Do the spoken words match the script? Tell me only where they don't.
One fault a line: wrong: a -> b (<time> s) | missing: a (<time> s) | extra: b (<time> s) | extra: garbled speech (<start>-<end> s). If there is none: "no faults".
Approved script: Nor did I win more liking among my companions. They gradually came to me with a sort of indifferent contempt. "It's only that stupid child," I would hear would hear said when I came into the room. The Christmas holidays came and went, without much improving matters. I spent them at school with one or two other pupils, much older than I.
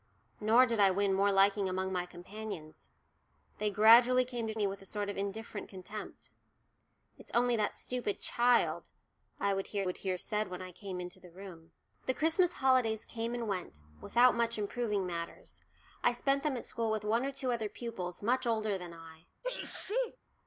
no faults